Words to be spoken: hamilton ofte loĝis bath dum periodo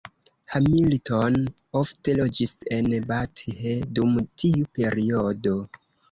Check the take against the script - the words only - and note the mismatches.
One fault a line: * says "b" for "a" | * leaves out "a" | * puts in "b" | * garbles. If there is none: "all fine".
* puts in "en"
* puts in "tiu"